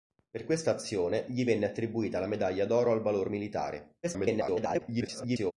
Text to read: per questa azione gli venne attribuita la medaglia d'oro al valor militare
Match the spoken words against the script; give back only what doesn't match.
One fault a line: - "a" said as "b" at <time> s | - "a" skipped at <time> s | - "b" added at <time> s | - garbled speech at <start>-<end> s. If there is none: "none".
- garbled speech at 4.0-5.5 s